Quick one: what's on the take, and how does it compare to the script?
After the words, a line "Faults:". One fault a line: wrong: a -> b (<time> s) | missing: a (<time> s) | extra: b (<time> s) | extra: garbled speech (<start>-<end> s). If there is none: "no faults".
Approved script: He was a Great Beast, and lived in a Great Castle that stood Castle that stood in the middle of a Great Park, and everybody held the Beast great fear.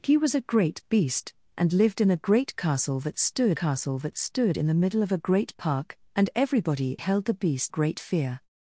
He was a Great Beast, and lived in a Great Castle that stood Castle that stood in the middle of a Great Park, and everybody held the Beast great fear.
Faults:
no faults